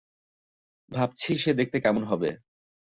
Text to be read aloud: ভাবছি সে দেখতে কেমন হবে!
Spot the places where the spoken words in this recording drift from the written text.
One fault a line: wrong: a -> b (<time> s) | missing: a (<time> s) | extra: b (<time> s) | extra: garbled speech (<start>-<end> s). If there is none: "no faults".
no faults